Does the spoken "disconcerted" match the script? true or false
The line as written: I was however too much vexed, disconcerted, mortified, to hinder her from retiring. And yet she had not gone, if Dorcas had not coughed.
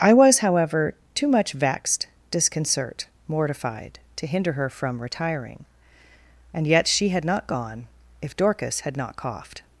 false